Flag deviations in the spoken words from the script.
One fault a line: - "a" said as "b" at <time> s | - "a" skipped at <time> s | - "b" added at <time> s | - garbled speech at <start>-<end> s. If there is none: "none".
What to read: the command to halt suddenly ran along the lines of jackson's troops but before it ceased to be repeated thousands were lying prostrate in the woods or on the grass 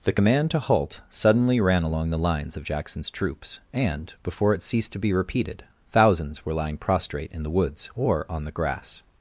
- "but" said as "and" at 3.7 s